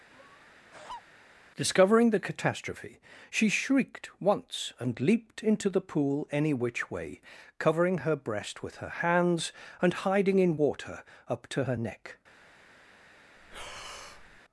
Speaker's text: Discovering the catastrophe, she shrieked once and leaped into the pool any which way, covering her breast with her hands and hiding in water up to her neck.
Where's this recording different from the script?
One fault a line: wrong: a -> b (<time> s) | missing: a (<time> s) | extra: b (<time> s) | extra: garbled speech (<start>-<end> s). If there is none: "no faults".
no faults